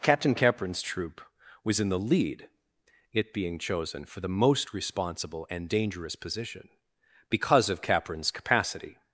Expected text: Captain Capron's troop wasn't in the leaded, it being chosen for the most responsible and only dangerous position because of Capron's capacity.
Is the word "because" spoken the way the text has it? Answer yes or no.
yes